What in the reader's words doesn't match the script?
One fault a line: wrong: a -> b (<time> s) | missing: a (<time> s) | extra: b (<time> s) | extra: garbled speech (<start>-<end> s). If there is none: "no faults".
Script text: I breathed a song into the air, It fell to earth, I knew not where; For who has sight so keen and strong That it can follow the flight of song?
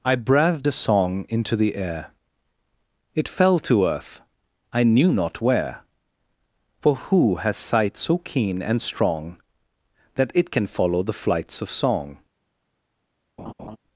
wrong: flight -> flights (11.1 s)